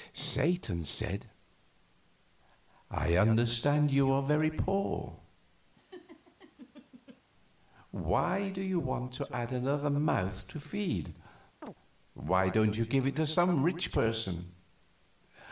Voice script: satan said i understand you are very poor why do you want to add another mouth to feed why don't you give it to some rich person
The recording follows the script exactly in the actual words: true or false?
true